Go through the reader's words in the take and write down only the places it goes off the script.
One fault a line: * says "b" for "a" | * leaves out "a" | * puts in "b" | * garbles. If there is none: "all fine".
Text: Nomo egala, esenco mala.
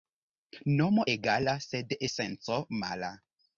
* puts in "sed"